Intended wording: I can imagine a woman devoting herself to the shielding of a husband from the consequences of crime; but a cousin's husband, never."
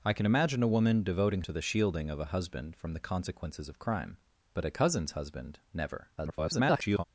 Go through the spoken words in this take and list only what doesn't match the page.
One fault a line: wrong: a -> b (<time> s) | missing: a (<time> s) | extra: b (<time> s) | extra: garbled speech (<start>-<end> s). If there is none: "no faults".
missing: herself (1.4 s)
extra: garbled speech (6.2-7.0 s)